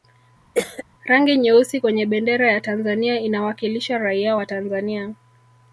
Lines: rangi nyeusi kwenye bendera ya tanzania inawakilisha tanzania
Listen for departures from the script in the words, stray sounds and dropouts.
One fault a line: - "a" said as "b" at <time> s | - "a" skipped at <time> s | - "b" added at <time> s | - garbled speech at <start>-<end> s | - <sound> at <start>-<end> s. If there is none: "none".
- cough at 0.5-0.8 s
- "raia wa" added at 4.0 s